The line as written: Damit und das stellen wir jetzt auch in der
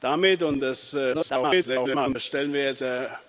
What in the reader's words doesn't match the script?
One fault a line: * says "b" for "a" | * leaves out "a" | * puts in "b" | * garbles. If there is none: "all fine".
* garbles
* leaves out "auch in"